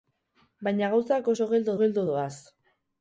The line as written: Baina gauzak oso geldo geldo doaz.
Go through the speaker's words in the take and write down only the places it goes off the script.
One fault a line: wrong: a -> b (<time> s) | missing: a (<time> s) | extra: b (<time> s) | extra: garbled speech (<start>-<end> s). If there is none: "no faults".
no faults